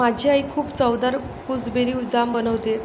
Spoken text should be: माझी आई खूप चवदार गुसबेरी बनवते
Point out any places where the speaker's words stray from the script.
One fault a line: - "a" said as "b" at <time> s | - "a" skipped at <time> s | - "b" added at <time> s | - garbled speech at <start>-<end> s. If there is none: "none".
- "जाम" added at 2.1 s